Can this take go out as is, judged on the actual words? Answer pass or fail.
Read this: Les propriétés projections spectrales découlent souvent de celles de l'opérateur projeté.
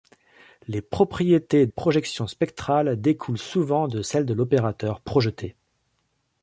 pass